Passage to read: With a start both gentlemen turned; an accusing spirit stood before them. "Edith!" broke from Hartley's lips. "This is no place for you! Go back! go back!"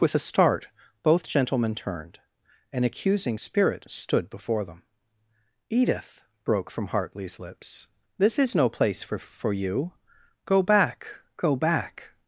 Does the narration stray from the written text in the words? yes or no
yes